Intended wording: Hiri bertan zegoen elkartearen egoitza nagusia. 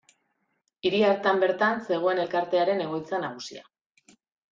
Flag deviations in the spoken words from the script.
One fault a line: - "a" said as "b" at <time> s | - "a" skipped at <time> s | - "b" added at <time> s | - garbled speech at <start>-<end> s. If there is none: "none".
- "hartan" added at 1.1 s